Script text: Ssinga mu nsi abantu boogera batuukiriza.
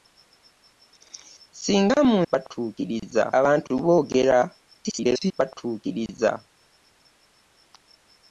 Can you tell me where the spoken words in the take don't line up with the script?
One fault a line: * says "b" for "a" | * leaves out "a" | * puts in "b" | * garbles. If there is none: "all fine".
* says "batuukiriza" for "nsi"
* garbles